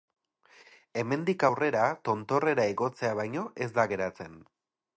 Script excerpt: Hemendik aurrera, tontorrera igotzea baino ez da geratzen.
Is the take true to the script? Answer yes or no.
yes